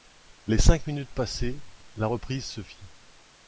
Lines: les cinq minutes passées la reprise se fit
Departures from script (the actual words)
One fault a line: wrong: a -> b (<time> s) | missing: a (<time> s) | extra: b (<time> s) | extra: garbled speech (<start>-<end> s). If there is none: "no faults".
no faults